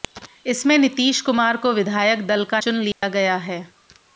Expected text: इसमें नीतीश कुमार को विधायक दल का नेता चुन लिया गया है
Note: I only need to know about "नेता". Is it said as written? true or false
false